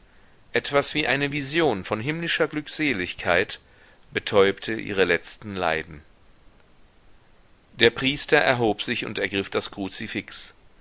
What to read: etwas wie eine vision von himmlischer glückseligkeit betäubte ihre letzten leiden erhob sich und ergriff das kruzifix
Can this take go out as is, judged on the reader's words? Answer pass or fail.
fail